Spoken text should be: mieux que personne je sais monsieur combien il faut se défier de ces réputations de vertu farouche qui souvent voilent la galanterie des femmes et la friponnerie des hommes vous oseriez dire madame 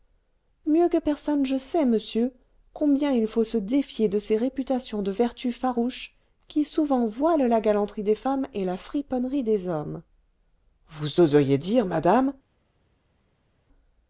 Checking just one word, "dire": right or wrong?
right